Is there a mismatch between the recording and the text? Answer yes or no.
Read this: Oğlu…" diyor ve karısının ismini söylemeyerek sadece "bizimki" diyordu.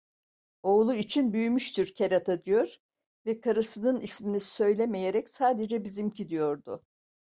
yes